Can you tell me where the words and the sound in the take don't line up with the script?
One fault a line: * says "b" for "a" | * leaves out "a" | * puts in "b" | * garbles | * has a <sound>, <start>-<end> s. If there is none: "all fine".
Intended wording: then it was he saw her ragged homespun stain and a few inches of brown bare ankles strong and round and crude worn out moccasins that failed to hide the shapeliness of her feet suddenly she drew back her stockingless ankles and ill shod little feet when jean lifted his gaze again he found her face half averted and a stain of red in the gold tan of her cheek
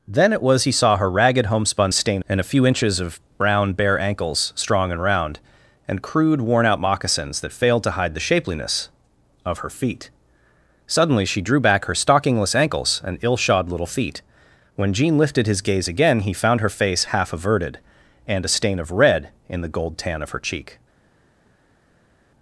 all fine